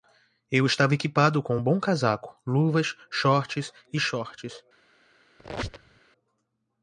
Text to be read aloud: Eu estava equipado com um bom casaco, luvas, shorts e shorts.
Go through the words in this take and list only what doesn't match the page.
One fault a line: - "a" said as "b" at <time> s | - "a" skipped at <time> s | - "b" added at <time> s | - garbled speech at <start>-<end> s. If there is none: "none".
none